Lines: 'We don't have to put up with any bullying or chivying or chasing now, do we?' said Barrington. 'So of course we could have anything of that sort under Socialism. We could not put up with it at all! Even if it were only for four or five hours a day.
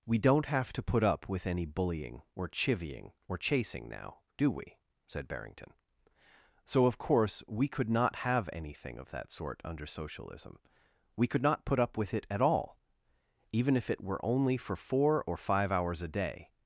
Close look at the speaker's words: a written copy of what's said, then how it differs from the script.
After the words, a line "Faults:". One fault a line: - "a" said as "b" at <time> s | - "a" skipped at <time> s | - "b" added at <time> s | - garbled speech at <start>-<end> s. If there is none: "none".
'We don't have to put up with any bullying or chivying or chasing now, do we?' said Barrington. 'So of course we could not have anything of that sort under Socialism. We could not put up with it at all! Even if it were only for four or five hours a day.
Faults:
- "not" added at 7.9 s